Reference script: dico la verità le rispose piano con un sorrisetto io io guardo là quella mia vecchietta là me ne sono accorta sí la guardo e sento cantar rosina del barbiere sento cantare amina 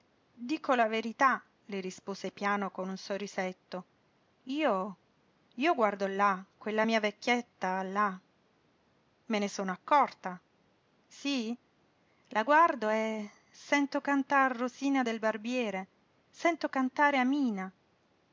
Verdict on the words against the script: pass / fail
pass